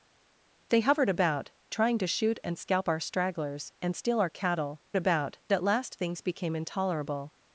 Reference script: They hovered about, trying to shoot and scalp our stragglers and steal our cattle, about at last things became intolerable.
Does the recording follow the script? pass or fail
pass